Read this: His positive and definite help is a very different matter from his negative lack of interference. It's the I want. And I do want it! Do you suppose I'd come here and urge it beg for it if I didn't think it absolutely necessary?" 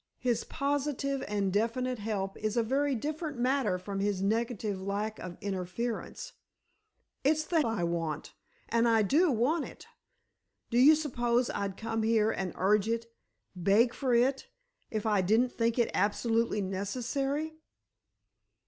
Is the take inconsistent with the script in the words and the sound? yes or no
no